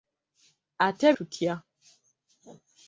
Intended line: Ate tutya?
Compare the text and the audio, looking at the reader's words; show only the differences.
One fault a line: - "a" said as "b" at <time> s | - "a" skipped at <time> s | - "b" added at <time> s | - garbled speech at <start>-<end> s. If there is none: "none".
none